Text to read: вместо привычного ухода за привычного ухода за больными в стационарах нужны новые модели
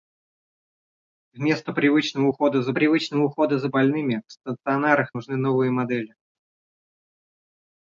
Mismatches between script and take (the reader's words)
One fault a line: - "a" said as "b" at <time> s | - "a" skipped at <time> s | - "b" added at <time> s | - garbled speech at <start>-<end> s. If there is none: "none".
none